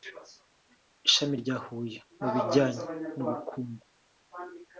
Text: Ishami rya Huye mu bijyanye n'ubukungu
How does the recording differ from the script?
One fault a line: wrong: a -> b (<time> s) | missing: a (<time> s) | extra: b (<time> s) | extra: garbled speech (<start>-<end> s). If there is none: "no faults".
no faults